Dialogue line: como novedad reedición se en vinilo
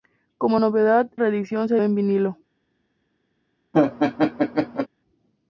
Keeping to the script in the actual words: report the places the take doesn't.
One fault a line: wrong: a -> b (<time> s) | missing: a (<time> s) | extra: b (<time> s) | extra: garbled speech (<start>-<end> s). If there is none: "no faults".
no faults